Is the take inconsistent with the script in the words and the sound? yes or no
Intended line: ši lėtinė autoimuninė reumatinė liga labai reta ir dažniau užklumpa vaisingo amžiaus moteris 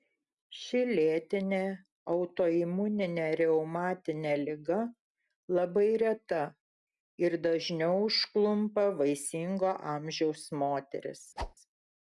yes